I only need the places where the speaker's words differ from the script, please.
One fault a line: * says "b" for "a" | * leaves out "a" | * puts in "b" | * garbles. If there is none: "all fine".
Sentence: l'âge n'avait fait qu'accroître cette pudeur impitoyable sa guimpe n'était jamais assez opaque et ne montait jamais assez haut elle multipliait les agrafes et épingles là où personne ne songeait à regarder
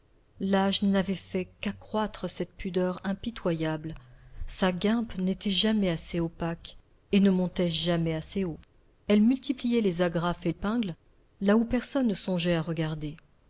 all fine